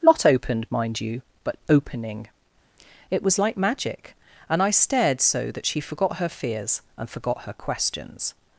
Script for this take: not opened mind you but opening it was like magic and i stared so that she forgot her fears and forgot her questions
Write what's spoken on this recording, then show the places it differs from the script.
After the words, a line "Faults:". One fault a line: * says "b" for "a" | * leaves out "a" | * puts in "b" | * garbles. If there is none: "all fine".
not opened mind you but opening it was like magic and i stared so that she forgot her fears and forgot her questions
Faults:
all fine